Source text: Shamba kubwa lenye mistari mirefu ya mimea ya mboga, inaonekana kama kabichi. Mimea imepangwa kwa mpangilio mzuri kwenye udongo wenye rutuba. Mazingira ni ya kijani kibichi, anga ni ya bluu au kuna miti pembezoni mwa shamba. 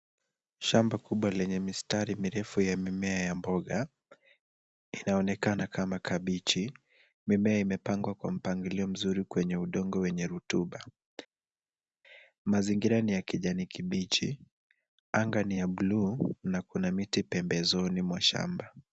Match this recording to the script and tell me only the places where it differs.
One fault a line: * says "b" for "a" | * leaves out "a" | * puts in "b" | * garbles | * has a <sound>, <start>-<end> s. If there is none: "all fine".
* says "na" for "au"